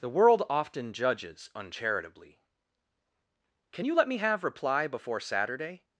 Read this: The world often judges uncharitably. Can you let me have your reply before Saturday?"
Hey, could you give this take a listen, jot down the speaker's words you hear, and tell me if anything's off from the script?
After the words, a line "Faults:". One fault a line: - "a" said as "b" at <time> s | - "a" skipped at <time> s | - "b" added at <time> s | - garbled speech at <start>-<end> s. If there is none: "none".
The world often judges uncharitably. Can you let me have reply before Saturday?"
Faults:
- "your" skipped at 4.4 s